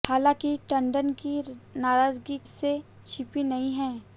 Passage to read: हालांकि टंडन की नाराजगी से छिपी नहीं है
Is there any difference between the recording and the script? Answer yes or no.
no